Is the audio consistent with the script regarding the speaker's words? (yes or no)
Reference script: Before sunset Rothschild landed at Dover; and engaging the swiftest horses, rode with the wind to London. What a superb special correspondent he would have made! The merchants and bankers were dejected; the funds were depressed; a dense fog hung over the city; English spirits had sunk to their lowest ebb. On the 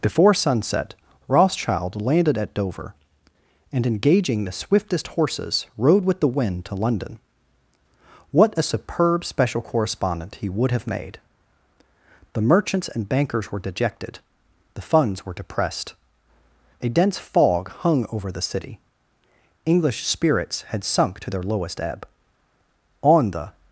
yes